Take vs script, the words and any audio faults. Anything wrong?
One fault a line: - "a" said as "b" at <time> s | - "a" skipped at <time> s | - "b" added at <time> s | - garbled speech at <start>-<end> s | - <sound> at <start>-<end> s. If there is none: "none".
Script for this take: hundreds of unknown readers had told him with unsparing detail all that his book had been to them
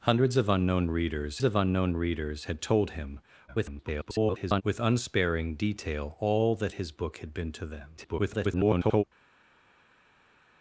- "of unknown readers" added at 1.4 s
- garbled speech at 3.5-4.6 s
- garbled speech at 8.0-9.0 s